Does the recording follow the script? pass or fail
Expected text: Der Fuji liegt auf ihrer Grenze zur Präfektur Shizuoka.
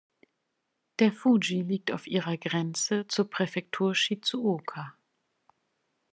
pass